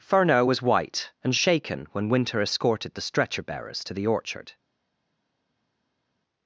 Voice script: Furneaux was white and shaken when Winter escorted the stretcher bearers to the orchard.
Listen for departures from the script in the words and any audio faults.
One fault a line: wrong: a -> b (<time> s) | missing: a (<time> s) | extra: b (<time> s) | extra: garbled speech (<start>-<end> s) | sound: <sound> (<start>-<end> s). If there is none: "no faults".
no faults